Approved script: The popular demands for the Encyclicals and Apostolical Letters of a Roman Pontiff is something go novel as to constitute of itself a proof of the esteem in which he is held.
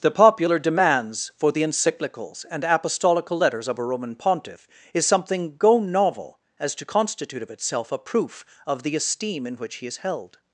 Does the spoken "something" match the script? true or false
true